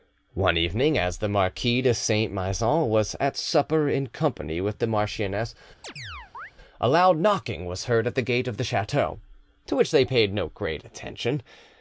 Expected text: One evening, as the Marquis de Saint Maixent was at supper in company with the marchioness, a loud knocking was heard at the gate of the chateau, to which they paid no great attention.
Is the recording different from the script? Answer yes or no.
no